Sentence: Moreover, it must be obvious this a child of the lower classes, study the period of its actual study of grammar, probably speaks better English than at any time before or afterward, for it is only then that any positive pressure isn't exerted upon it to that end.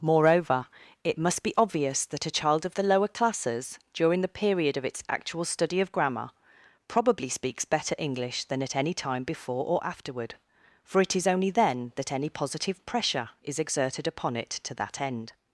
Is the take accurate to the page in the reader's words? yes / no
no